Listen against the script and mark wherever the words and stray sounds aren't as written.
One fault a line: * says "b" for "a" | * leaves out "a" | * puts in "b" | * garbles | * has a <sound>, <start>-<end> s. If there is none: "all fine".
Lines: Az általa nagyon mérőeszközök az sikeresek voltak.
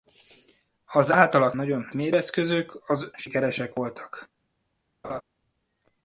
* has a laugh, 5.0-5.2 s